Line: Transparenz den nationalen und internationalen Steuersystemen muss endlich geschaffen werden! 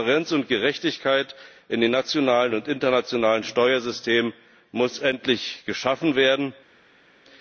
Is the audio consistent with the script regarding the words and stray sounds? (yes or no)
no